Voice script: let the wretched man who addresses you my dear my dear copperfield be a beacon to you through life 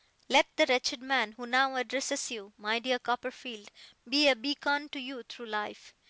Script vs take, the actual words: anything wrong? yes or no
yes